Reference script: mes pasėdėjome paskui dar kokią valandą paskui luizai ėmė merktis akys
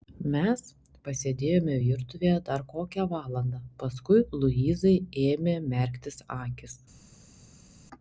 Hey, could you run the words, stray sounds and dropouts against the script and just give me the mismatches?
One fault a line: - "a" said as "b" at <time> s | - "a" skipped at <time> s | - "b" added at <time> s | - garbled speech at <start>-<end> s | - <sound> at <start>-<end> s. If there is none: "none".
- "paskui" said as "virtuvėje" at 1.8 s